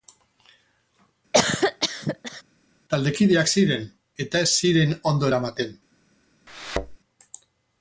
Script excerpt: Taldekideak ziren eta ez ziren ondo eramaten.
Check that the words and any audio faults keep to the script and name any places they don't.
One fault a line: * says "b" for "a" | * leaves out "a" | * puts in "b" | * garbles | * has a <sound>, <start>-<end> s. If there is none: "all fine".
* has a cough, 1.3-2.4 s
* has a thud, 6.5-7.0 s